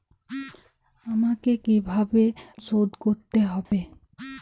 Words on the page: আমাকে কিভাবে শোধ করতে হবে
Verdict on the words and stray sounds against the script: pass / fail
fail